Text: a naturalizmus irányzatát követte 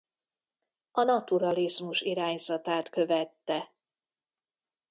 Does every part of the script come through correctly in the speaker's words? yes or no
yes